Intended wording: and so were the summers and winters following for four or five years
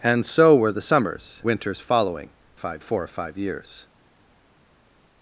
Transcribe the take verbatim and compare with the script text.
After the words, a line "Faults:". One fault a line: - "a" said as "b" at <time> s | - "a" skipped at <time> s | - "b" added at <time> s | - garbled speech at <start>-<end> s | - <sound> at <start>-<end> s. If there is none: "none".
and so were the summers winters following five four or five years
Faults:
- "and" skipped at 1.4 s
- "for" said as "five" at 2.5 s